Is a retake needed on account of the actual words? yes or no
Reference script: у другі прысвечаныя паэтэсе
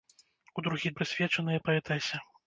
no